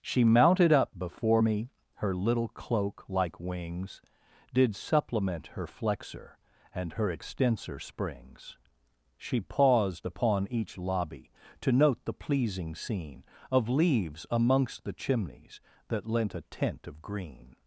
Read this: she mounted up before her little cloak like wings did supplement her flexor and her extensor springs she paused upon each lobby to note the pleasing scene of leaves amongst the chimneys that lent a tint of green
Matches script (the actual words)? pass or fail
fail